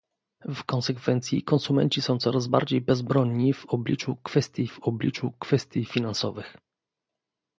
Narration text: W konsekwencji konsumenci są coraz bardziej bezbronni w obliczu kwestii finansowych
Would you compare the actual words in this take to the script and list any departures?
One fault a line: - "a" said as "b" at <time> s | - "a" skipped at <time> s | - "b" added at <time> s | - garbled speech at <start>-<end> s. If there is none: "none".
- "w obliczu kwestii" added at 4.7 s